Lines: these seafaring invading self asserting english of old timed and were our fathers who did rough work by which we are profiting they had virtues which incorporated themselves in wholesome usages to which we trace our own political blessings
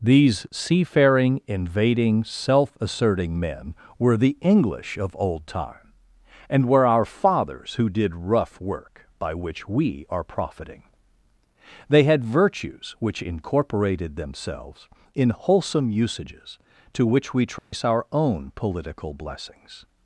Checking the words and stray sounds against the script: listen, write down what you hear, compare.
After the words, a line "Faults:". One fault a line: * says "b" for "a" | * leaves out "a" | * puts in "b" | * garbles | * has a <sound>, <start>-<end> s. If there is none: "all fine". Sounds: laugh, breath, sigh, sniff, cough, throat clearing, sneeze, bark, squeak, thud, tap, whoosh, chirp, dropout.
these seafaring invading self asserting men were the english of old time and were our fathers who did rough work by which we are profiting they had virtues which incorporated themselves in wholesome usages to which we trace our own political blessings
Faults:
* puts in "men were the"
* says "time" for "timed"
* has a dropout, 17.6-17.7 s